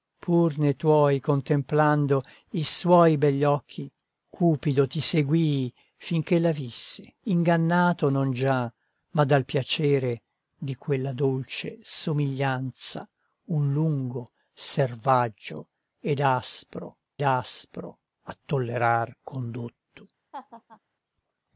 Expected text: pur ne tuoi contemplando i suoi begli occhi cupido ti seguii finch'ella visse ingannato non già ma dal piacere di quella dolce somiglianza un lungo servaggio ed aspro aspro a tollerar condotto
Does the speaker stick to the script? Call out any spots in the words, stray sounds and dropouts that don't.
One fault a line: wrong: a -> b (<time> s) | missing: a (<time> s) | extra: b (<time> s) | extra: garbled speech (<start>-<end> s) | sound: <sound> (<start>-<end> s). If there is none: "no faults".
sound: laugh (20.3-20.8 s)